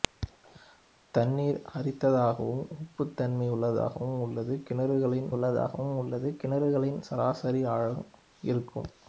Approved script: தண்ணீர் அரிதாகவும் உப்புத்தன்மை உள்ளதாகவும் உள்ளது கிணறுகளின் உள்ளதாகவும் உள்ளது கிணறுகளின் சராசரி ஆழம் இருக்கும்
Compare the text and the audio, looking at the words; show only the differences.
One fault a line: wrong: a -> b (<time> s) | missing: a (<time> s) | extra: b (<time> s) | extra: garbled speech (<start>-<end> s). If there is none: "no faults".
no faults